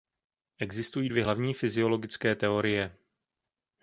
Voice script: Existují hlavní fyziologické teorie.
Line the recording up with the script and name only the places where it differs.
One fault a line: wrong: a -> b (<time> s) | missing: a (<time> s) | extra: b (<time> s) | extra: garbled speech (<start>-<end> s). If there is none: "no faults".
extra: dvě (1.1 s)